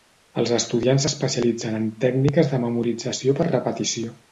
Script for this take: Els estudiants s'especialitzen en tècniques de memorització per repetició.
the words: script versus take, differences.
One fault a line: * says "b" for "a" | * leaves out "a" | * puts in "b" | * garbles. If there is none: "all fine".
all fine